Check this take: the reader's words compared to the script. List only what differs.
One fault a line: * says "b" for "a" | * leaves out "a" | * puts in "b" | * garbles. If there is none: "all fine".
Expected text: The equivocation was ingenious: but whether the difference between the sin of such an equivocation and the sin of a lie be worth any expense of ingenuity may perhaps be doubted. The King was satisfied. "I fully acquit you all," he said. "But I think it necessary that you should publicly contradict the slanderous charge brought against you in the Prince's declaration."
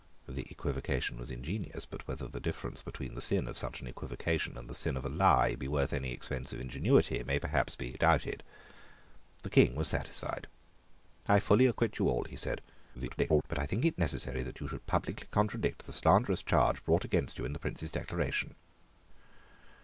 * garbles